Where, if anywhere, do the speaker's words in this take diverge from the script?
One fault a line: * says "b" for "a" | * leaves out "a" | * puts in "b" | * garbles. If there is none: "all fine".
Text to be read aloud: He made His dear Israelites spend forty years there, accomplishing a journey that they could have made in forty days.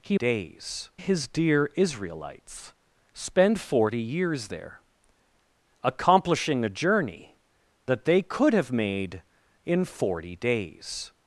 * says "days" for "made"